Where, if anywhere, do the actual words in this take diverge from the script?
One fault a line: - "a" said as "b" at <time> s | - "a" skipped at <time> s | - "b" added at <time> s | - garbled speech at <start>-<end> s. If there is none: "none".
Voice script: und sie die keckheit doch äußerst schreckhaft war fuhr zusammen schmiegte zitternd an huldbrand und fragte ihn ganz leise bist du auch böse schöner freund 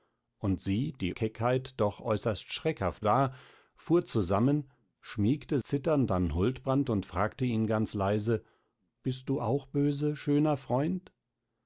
none